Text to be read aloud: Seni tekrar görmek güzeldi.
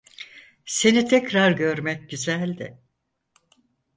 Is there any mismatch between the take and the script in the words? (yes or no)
no